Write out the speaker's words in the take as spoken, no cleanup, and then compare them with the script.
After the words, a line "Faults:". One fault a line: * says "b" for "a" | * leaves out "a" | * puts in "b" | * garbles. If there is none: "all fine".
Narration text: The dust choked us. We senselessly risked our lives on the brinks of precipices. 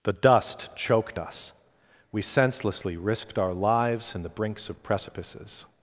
The dust choked us. We senselessly risked our lives in the brinks of precipices.
Faults:
* says "in" for "on"